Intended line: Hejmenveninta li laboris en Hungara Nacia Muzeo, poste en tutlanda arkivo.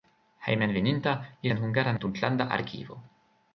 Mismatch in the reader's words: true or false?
true